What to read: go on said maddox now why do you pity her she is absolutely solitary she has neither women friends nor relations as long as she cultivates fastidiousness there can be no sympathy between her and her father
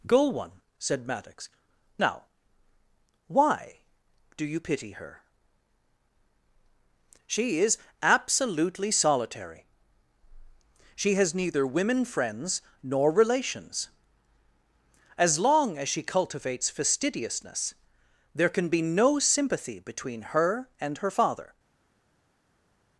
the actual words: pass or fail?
fail